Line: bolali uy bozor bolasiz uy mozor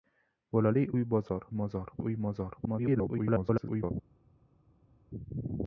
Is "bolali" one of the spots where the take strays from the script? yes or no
no